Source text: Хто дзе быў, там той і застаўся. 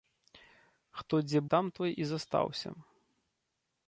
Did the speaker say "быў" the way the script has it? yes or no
no